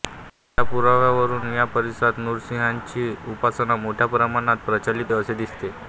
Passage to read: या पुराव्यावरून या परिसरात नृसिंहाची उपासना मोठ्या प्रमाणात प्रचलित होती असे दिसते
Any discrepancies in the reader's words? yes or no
yes